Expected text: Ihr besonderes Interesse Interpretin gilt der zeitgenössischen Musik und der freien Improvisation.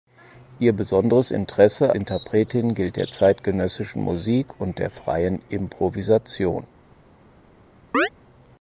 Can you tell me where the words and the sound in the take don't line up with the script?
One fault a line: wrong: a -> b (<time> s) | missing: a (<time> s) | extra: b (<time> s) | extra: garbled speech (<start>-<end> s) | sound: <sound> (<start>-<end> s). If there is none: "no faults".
sound: chirp (7.9-8.1 s)